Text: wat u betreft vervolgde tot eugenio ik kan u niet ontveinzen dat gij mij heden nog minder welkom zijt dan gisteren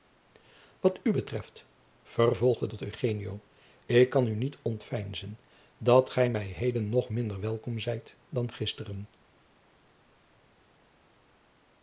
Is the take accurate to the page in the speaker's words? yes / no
yes